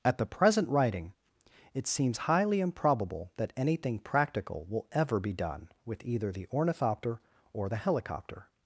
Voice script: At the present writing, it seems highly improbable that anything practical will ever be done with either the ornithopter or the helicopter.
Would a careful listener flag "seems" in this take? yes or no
no